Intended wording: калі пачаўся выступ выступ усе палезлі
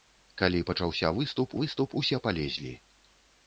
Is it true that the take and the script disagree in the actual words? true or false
false